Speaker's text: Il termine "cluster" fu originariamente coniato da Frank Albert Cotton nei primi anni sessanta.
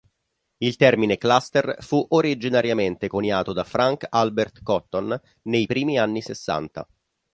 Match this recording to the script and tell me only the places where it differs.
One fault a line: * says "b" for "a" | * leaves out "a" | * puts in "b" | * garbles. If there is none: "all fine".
all fine